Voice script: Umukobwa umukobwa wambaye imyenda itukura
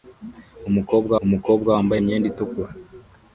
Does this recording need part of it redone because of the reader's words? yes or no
no